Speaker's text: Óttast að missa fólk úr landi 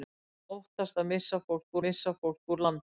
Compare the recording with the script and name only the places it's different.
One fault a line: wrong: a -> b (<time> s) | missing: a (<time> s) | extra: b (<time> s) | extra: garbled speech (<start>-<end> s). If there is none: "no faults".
extra: missa fólk (1.9 s)